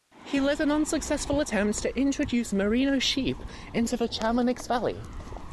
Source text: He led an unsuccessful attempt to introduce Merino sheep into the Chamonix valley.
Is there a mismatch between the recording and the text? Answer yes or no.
no